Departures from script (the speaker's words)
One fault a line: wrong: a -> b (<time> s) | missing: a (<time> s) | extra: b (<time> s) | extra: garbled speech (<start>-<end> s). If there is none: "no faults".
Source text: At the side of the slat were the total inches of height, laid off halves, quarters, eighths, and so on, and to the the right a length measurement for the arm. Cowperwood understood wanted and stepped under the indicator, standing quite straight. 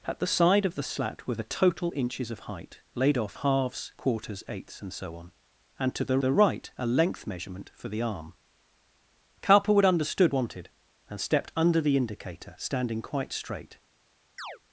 no faults